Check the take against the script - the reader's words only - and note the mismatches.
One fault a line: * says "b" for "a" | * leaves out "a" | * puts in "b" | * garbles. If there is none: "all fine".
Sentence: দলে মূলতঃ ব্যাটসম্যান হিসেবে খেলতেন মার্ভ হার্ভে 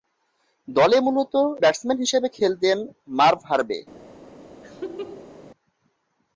all fine